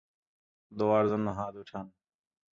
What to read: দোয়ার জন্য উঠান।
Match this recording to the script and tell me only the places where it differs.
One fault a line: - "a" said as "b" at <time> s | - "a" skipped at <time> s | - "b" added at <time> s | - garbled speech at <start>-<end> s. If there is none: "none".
- "হাত" added at 1.3 s